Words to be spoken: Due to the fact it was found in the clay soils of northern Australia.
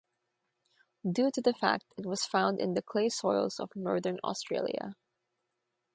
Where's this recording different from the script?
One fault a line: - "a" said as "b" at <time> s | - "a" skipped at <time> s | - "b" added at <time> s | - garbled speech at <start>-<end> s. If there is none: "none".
none